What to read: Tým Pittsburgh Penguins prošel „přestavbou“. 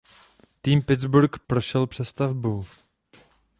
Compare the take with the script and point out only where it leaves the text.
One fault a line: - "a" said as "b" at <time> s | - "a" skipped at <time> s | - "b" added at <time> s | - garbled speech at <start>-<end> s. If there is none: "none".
- "Penguins" skipped at 1.4 s